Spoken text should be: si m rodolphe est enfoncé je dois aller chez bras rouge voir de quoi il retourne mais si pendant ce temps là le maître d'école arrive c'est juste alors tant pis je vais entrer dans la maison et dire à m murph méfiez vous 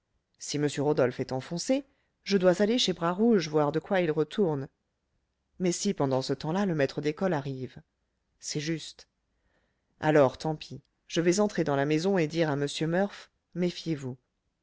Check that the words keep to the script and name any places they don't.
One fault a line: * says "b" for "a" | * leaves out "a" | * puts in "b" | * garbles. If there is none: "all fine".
all fine